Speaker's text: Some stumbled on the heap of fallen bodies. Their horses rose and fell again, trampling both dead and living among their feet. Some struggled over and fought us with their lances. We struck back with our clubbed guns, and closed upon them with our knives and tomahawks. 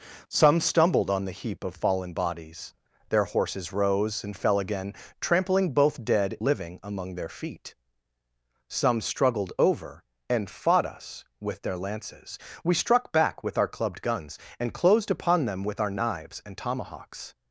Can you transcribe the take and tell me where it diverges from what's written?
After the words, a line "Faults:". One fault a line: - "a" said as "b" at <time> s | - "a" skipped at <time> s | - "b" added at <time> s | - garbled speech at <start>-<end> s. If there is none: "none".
Some stumbled on the heap of fallen bodies. Their horses rose and fell again, trampling both dead living among their feet. Some struggled over and fought us with their lances. We struck back with our clubbed guns, and closed upon them with our knives and tomahawks.
Faults:
- "and" skipped at 6.4 s